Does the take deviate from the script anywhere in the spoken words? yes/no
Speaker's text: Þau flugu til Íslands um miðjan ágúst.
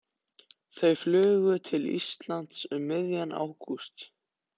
no